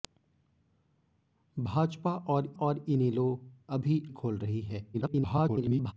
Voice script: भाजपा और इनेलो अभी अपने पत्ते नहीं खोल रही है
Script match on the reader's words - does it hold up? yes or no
no